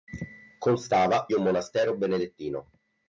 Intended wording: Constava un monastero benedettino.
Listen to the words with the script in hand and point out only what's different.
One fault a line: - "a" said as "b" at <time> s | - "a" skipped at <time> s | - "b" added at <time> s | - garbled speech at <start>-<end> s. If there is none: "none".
none